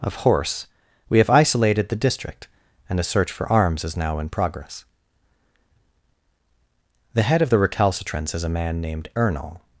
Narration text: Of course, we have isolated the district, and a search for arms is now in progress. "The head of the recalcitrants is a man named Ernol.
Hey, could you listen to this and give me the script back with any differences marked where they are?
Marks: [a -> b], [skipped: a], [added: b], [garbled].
Of [course, -> horse] we have isolated the district, and a search for arms is now in progress. "The head of the recalcitrants is a man named Ernol.